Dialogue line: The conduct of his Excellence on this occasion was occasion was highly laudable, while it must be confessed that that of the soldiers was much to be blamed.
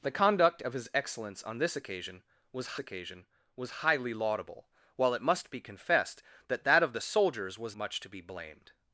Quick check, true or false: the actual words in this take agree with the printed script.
true